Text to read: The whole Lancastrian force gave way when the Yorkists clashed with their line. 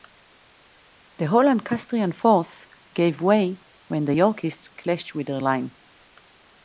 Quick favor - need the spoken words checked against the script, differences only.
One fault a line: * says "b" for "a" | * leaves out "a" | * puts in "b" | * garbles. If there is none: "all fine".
all fine